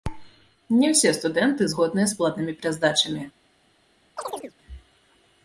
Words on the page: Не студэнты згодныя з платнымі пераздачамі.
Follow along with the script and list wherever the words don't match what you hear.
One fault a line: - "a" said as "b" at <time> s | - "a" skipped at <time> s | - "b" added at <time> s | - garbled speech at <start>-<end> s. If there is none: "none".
- "ўсе" added at 0.9 s